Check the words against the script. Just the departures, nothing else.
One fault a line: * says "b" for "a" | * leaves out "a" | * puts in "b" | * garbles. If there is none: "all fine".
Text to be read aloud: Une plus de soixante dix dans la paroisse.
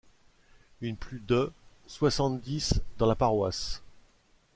all fine